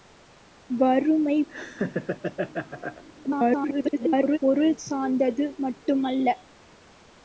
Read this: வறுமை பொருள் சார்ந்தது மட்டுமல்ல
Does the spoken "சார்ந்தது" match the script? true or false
true